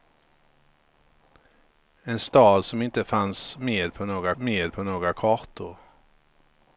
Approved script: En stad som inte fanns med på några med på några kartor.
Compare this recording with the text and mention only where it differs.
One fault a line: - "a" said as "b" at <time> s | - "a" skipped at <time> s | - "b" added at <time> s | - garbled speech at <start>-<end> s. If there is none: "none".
none